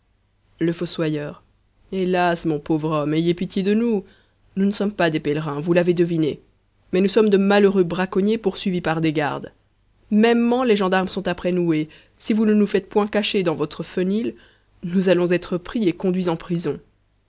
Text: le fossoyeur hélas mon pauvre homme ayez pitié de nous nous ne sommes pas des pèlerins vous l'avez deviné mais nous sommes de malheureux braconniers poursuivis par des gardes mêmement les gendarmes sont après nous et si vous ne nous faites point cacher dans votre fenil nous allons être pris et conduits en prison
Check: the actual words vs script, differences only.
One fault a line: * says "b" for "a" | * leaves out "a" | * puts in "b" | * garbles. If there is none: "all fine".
all fine